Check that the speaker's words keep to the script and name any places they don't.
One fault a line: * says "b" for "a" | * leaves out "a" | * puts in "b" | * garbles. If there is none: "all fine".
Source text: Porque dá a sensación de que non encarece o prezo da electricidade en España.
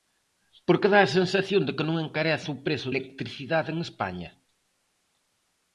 * leaves out "da"